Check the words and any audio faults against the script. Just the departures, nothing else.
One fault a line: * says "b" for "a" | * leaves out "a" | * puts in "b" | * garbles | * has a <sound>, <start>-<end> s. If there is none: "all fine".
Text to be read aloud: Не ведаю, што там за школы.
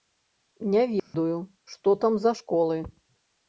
* has a dropout, 1.0-1.1 s